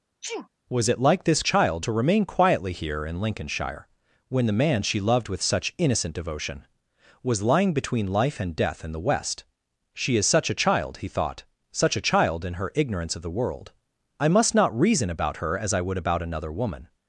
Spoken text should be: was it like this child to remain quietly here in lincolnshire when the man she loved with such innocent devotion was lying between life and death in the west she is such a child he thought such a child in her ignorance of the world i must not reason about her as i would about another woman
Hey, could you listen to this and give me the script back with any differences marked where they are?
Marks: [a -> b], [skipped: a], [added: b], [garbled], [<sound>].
[sneeze] was it like this child to remain quietly here in lincolnshire when the man she loved with such innocent devotion was lying between life and death in the west she is such a child he thought such a child in her ignorance of the world i must not reason about her as i would about another woman